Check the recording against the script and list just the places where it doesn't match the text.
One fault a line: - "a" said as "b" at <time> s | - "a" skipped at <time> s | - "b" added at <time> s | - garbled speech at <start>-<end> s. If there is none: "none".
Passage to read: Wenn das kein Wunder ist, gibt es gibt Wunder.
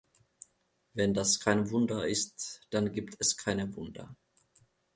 - "dann" added at 2.7 s
- "gibt" said as "keine" at 3.4 s